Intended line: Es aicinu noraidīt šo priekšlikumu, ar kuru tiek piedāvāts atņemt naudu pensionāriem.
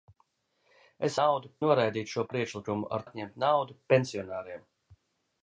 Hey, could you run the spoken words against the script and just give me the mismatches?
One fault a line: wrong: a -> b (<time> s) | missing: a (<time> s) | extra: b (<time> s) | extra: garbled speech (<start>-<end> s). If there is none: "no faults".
wrong: aicinu -> naudu (1.2 s)
missing: kuru tiek piedāvāts (3.1 s)